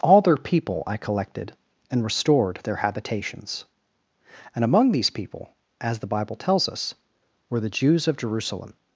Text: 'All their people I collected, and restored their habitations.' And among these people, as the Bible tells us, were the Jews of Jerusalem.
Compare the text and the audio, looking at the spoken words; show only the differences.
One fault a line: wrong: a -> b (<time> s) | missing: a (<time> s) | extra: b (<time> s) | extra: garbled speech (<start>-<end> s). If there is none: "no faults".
no faults